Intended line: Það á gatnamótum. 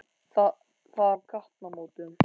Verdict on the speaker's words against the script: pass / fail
pass